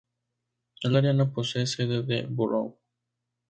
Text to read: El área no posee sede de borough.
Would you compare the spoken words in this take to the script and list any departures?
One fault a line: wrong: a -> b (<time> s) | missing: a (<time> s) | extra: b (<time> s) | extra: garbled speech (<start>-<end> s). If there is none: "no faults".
no faults